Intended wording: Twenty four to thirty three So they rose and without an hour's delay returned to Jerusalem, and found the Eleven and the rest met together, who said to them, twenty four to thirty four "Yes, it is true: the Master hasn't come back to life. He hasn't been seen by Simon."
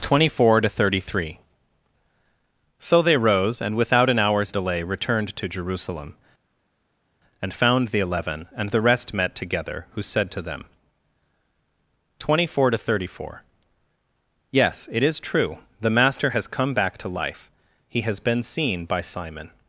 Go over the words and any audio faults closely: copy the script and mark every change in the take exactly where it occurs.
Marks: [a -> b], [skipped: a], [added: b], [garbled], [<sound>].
Twenty four to thirty three So they rose and without an hour's delay returned to Jerusalem, and found the Eleven and the rest met together, who said to them, twenty four to thirty four "Yes, it is true: the Master [hasn't -> has] come back to life. He [hasn't -> has] been seen by Simon."